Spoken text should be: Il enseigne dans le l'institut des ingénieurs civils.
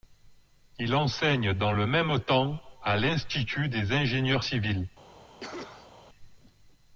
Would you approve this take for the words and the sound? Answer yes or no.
no